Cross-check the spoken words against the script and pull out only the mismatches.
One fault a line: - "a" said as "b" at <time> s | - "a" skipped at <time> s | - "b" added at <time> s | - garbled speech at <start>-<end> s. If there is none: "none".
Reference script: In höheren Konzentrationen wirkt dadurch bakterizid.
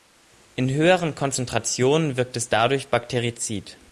- "es" added at 2.4 s